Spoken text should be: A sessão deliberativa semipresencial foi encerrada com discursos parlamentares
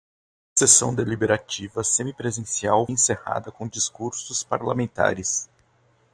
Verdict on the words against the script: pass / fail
fail